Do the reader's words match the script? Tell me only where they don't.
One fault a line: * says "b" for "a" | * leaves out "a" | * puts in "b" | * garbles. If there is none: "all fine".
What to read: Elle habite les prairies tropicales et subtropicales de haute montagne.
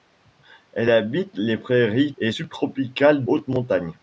* leaves out "tropicales"
* leaves out "de"